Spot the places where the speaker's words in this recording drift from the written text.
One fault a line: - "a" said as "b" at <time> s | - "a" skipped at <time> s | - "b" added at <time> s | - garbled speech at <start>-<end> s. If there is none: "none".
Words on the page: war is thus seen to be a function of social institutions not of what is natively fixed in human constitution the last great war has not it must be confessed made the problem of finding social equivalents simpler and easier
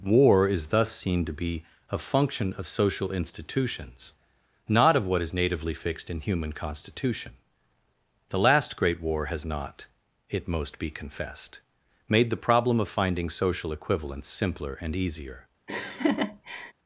- "must" said as "most" at 10.5 s